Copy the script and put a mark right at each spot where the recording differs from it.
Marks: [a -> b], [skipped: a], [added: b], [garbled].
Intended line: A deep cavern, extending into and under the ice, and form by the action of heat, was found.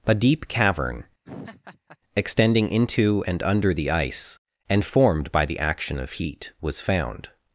A deep cavern, extending into and under the ice, and [form -> formed] by the action of heat, was found.